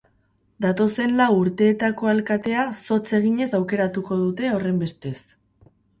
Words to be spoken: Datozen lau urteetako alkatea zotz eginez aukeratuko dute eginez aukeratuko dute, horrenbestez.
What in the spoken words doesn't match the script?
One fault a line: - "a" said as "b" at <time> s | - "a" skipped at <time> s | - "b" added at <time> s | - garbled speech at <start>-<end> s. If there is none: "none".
- "eginez aukeratuko dute" skipped at 4.5 s